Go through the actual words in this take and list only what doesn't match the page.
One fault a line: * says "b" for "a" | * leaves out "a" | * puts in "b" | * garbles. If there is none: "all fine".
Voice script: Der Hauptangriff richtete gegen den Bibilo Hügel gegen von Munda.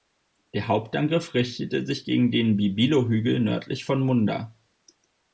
* puts in "sich"
* says "nördlich" for "gegen"